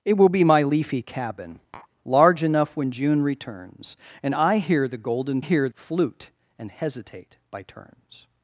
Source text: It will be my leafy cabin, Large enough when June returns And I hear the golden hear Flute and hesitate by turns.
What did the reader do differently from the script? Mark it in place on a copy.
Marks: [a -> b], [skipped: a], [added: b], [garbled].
It will be my leafy cabin, Large enough when June returns And I hear the golden hear Flute and hesitate by turns.